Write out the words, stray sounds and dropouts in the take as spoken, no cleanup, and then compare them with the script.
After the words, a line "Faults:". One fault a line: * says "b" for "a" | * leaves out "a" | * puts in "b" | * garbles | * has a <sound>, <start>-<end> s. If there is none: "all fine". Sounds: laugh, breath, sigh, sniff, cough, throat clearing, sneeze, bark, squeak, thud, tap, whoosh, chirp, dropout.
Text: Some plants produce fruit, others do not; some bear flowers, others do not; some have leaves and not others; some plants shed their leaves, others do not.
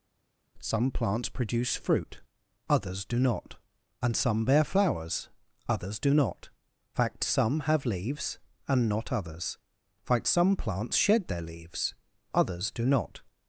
Some plants produce fruit, others do not; and some bear flowers, others do not; fact some have leaves and not others; fact some plants shed their leaves, others do not.
Faults:
* puts in "and"
* puts in "fact"
* puts in "fact"